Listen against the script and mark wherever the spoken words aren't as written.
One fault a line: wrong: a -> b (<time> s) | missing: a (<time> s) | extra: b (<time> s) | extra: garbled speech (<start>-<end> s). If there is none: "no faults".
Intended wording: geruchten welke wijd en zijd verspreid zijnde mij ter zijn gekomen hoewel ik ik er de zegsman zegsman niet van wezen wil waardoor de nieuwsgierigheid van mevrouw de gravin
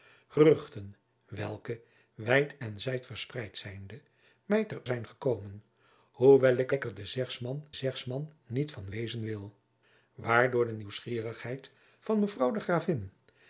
no faults